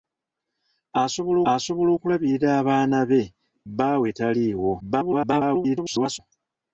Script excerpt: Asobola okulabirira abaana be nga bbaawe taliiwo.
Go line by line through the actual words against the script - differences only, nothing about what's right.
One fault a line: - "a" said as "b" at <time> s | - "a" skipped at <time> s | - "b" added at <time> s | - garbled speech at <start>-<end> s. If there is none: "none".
- "asobola" added at 1.5 s
- "nga" skipped at 3.2 s
- garbled speech at 4.8-6.2 s